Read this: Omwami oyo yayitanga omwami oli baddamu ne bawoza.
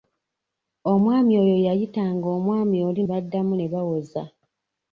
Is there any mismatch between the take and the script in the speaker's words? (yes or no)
no